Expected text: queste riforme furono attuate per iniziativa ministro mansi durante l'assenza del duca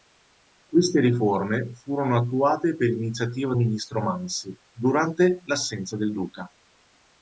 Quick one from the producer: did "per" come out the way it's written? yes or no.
yes